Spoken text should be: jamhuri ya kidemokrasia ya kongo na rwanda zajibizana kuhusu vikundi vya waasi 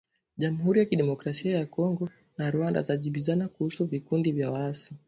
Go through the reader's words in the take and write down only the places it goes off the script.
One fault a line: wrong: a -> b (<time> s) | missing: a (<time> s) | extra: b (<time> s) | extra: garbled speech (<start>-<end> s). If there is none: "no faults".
no faults